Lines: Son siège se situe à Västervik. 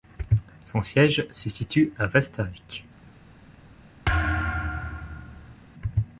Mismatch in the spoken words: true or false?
false